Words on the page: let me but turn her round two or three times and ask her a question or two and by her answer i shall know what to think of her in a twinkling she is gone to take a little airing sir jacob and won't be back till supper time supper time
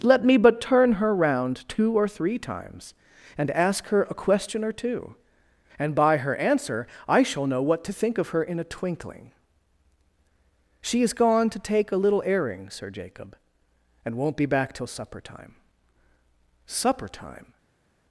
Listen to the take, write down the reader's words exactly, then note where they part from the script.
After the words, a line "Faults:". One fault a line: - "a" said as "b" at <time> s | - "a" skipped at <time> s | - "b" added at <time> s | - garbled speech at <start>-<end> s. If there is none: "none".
let me but turn her round two or three times and ask her a question or two and by her answer i shall know what to think of her in a twinkling she is gone to take a little airing sir jacob and won't be back till supper time supper time
Faults:
none